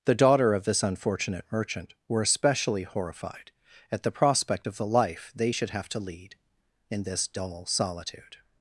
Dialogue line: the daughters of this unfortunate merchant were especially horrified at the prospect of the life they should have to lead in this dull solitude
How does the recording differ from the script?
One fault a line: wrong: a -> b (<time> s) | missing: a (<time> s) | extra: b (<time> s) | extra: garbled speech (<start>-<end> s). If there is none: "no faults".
wrong: daughters -> daughter (0.1 s)